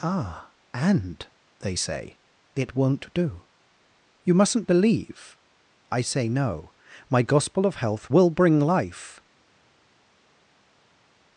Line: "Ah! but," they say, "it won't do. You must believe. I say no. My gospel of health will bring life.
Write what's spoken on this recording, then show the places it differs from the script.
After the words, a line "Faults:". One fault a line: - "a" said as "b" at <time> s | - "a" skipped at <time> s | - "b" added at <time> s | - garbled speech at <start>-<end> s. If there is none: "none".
"Ah! and," they say, "it won't do. You mustn't believe. I say no. My gospel of health will bring life.
Faults:
- "but" said as "and" at 0.7 s
- "must" said as "mustn't" at 4.3 s